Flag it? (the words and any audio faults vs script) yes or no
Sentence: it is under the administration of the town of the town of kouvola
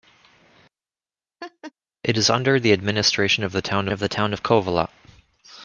yes